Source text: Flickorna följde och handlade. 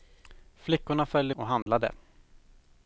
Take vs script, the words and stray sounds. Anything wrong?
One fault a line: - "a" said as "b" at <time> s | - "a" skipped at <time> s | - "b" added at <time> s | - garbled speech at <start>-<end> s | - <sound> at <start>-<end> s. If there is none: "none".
- dropout at 1.6-1.7 s